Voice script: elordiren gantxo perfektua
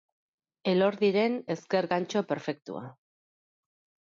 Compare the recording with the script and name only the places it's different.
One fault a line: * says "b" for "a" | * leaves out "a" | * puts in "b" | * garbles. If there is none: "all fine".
* puts in "ezker"